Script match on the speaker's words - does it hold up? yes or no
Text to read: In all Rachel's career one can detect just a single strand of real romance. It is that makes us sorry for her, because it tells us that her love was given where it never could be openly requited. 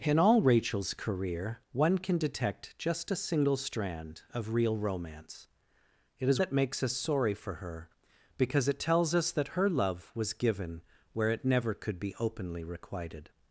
yes